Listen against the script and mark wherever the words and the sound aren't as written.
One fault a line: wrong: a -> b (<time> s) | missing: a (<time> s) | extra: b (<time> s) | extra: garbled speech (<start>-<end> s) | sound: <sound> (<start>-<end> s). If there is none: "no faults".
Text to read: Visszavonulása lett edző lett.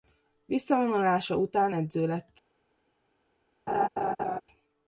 wrong: lett -> után (1.4 s)
sound: laugh (3.7-4.4 s)